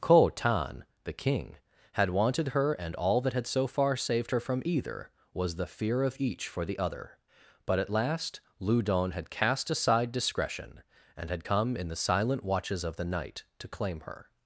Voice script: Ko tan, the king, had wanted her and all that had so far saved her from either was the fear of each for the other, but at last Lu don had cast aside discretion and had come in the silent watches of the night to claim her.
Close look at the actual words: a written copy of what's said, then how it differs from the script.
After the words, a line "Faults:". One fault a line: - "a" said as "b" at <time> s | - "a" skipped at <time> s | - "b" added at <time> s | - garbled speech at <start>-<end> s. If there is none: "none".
Ko tan, the king, had wanted her and all that had so far saved her from either was the fear of each for the other, but at last Lu don had cast aside discretion and had come in the silent watches of the night to claim her.
Faults:
none